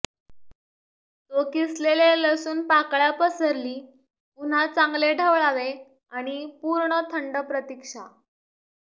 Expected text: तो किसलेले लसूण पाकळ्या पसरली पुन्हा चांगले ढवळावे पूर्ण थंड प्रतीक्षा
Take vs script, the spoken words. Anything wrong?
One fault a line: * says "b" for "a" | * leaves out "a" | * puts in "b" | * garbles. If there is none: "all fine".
* puts in "आणि"